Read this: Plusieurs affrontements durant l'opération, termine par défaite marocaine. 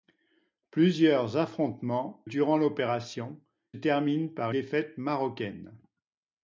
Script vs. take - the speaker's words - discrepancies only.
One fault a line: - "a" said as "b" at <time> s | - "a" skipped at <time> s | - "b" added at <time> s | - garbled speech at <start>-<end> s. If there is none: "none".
none